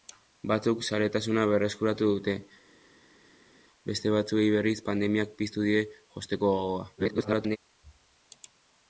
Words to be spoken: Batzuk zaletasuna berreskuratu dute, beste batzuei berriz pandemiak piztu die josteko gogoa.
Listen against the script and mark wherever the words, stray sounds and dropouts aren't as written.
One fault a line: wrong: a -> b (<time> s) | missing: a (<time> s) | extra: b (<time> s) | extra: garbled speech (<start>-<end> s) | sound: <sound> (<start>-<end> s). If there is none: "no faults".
extra: garbled speech (7.0-7.6 s)